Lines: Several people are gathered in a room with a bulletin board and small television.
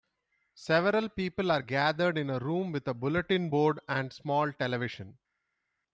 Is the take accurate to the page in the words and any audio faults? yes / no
yes